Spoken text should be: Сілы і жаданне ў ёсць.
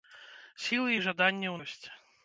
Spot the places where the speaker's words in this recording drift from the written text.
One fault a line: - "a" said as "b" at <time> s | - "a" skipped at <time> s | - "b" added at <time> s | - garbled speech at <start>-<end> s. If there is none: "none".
none